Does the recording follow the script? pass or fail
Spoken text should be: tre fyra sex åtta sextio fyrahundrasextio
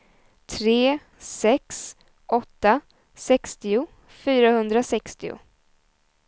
fail